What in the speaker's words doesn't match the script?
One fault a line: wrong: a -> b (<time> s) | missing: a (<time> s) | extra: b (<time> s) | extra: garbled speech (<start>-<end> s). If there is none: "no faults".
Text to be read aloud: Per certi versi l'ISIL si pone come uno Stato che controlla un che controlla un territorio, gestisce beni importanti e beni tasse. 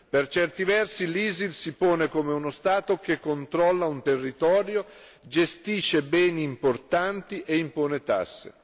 missing: che controlla un (4.0 s)
wrong: beni -> impone (7.6 s)